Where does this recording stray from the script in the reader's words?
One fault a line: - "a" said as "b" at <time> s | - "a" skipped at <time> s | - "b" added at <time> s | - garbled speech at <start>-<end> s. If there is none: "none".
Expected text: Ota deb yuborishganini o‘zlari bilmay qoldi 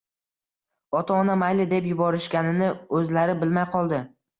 - "ona mayli" added at 1.2 s